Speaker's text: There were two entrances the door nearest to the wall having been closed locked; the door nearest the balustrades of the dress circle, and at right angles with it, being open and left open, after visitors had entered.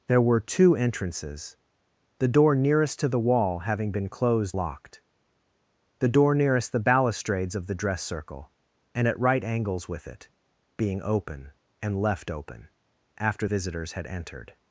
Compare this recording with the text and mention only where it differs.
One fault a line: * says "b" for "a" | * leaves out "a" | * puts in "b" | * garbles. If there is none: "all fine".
all fine